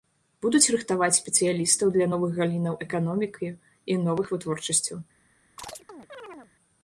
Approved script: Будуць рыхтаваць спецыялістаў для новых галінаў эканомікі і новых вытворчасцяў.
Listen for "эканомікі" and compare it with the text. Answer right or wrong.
right